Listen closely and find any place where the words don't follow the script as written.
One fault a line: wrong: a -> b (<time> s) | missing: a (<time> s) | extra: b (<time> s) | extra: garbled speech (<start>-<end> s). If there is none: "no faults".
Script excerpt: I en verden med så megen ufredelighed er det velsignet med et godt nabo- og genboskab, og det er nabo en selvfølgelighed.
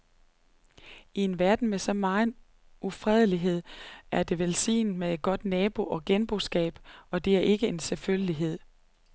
wrong: nabo -> ikke (7.4 s)